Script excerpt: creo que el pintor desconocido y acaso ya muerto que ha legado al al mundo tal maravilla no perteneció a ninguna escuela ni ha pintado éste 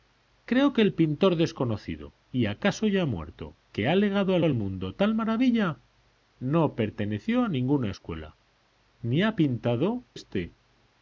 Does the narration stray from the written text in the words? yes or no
no